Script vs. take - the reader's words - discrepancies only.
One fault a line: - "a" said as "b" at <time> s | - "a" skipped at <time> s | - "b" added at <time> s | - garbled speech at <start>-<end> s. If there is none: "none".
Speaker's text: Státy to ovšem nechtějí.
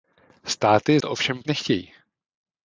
none